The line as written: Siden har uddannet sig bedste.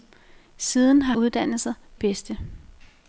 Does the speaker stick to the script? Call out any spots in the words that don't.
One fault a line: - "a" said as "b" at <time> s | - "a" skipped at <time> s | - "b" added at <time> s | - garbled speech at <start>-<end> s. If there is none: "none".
none